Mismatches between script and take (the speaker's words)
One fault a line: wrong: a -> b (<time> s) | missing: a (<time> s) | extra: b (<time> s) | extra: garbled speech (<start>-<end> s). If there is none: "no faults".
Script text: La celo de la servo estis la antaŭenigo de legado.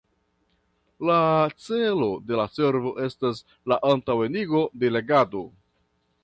wrong: estis -> estas (3.1 s)